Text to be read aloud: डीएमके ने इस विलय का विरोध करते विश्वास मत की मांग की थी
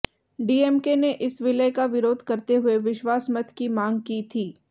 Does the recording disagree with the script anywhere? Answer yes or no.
yes